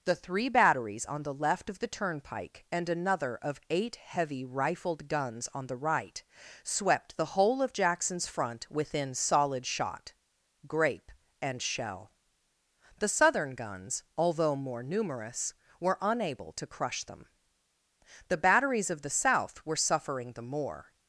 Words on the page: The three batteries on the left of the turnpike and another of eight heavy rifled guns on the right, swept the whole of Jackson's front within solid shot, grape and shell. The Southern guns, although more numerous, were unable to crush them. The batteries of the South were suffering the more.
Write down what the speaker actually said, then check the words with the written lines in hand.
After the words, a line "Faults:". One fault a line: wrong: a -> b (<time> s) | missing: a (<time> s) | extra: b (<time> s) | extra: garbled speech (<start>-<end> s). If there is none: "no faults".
The three batteries on the left of the turnpike and another of eight heavy rifled guns on the right, swept the whole of Jackson's front within solid shot, grape and shell. The Southern guns, although more numerous, were unable to crush them. The batteries of the South were suffering the more.
Faults:
no faults